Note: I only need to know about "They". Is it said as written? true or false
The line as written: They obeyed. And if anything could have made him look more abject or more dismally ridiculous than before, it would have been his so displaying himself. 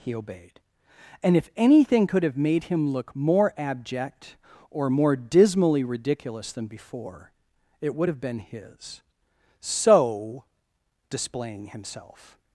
false